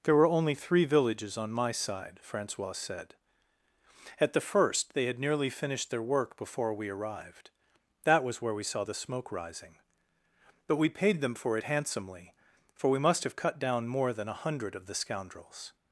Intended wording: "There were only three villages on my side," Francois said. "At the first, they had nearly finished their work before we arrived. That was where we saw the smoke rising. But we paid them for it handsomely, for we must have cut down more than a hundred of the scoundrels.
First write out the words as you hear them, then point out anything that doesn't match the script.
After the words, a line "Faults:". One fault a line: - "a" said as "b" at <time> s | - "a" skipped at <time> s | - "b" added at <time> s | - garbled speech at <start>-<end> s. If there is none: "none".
"There were only three villages on my side," Francois said. "At the first, they had nearly finished their work before we arrived. That was where we saw the smoke rising. But we paid them for it handsomely, for we must have cut down more than a hundred of the scoundrels.
Faults:
none